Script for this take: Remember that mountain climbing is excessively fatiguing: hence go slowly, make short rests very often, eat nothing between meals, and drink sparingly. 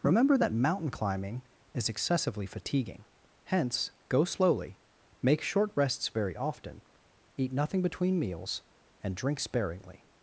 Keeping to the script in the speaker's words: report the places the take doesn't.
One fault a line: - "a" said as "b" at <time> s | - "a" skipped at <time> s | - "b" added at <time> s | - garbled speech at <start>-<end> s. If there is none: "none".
none